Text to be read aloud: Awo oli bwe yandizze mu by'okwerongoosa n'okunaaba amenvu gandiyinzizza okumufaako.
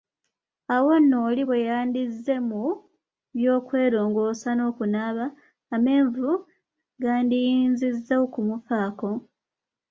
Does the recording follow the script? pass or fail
fail